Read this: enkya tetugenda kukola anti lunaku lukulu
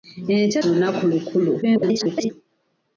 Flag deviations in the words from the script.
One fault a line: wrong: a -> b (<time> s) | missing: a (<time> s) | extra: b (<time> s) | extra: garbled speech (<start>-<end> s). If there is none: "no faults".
missing: tetugenda kukola anti (0.6 s)
extra: garbled speech (1.6-2.3 s)